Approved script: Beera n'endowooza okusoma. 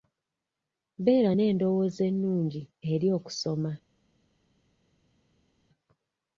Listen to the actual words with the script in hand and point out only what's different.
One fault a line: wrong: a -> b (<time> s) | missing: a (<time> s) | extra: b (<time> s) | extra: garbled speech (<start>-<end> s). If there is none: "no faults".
extra: ennungi eri (2.1 s)